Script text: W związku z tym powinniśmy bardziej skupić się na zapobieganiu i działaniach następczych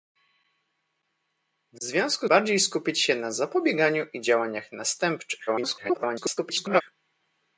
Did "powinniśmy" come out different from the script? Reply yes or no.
yes